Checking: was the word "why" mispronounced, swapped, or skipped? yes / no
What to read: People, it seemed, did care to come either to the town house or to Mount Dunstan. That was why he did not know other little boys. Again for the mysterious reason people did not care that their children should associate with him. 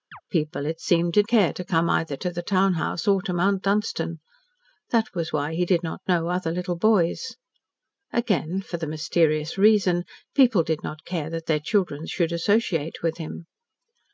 no